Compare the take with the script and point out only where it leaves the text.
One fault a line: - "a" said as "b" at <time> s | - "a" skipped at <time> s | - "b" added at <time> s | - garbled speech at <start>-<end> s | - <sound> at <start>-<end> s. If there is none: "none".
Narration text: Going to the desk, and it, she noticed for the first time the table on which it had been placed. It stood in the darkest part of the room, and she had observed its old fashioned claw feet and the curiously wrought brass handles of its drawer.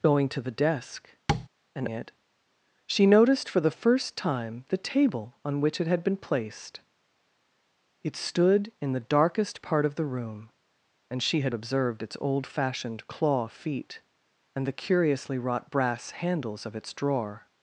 - tap at 1.3-1.5 s